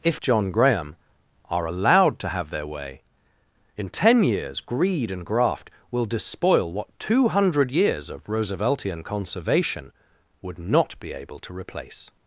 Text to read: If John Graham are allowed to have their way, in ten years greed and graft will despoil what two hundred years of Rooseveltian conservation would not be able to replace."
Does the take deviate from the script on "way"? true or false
false